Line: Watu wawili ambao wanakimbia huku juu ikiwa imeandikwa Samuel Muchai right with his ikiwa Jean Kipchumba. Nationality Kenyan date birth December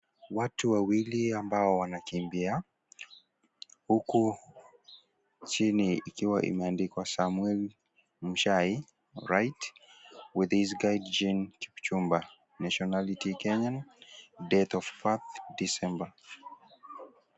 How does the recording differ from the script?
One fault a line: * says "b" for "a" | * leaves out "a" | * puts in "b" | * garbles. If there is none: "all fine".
* says "chini" for "juu"
* says "guide" for "ikiwa"
* puts in "of"